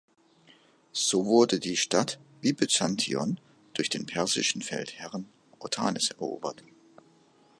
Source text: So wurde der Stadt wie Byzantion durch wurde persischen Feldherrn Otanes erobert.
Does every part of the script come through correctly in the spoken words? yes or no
no